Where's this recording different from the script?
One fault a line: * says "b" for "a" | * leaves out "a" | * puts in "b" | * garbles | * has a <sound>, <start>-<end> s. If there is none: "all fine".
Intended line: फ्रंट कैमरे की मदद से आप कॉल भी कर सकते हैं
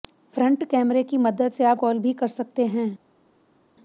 all fine